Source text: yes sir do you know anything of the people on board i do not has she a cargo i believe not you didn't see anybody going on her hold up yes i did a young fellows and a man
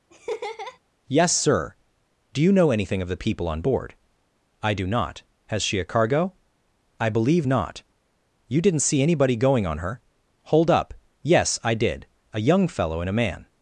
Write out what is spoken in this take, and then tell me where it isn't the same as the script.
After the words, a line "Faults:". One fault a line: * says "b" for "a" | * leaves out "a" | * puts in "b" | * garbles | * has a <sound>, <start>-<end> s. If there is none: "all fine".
yes sir do you know anything of the people on board i do not has she a cargo i believe not you didn't see anybody going on her hold up yes i did a young fellow and a man
Faults:
* has a laugh, 0.1-0.8 s
* says "fellow" for "fellows"